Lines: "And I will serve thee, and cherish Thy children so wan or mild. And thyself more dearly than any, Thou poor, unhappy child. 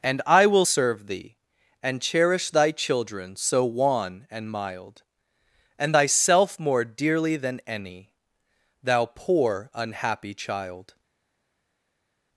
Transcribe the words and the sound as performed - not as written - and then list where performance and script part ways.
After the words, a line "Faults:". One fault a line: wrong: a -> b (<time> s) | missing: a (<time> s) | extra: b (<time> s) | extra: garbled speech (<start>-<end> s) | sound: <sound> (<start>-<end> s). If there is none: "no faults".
"And I will serve thee, and cherish Thy children so wan and mild. And thyself more dearly than any, Thou poor, unhappy child.
Faults:
wrong: or -> and (4.3 s)